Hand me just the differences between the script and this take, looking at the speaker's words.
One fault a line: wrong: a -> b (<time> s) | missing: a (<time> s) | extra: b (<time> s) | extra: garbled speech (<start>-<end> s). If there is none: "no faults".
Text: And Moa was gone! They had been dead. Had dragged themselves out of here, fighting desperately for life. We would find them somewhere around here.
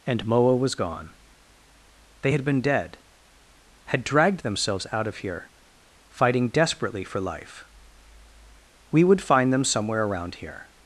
no faults